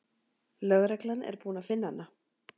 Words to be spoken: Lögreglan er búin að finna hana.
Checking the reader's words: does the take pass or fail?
pass